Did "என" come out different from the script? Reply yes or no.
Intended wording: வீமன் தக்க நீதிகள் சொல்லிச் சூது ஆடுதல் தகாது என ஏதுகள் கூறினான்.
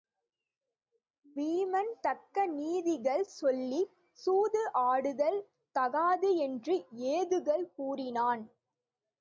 yes